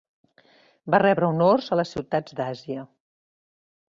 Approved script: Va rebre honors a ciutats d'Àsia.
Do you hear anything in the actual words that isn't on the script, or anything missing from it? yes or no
yes